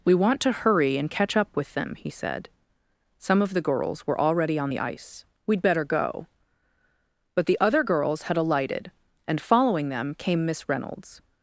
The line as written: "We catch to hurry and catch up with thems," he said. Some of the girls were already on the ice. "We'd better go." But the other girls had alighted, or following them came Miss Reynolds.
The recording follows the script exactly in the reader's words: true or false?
false